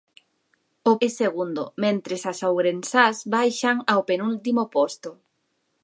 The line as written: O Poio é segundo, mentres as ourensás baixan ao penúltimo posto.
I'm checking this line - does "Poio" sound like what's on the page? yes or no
no